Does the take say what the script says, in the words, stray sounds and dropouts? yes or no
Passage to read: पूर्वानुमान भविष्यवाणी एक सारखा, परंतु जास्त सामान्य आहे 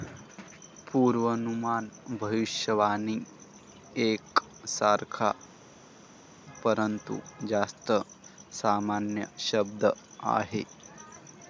no